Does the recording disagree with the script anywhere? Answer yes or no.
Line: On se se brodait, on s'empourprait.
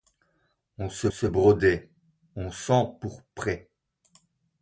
no